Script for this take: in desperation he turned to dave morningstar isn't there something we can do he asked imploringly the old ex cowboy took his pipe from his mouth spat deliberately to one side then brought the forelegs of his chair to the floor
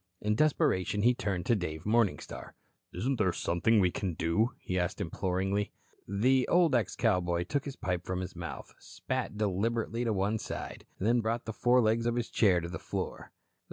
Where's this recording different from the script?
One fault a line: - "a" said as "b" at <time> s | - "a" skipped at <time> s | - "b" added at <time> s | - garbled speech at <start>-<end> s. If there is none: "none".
none